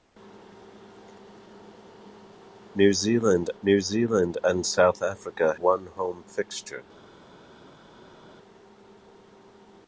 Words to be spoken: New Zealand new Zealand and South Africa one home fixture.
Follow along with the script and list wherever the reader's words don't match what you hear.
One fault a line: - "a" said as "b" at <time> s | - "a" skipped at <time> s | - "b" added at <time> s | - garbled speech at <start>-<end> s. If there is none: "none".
none